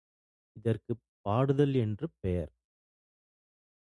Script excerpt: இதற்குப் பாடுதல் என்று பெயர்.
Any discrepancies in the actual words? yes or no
no